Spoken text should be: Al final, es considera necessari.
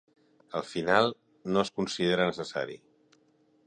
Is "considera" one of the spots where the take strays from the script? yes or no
no